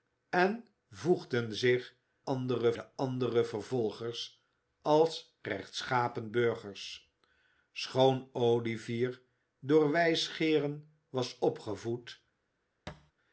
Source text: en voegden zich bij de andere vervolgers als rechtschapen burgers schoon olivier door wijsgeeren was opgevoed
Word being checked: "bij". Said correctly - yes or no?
no